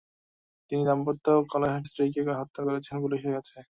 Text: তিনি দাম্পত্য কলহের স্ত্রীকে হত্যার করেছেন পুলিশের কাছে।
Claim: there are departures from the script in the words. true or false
false